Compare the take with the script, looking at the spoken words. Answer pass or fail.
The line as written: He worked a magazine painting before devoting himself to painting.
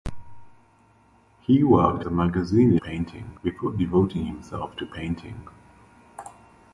pass